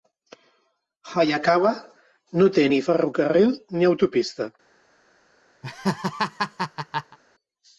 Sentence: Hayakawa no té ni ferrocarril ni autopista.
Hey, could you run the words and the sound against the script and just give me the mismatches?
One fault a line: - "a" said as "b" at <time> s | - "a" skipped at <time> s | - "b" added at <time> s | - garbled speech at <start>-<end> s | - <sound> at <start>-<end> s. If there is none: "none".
- laugh at 5.6-7.2 s